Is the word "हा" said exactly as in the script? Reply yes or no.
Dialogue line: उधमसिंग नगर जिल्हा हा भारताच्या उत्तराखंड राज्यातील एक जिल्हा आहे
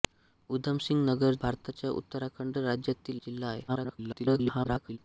no